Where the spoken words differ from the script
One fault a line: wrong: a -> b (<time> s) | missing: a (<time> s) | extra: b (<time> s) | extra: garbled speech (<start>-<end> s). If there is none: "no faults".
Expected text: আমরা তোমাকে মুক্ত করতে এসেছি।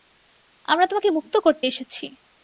no faults